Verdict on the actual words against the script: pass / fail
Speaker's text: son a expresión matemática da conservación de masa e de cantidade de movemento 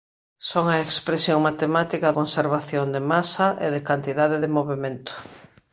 fail